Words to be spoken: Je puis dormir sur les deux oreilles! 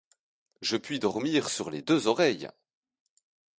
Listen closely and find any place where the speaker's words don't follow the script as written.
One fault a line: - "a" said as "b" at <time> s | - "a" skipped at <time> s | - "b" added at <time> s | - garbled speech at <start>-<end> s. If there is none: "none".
none